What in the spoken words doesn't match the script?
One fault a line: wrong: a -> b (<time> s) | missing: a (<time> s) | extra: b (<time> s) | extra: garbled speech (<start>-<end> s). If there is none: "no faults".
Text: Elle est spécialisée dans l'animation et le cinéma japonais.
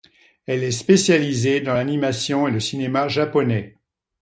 no faults